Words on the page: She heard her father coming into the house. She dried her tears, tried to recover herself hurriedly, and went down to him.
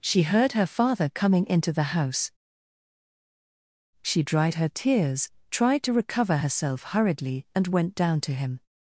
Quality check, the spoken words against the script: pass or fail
pass